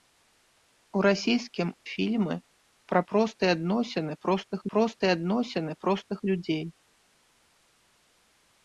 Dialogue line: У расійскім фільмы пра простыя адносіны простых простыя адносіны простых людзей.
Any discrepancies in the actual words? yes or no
no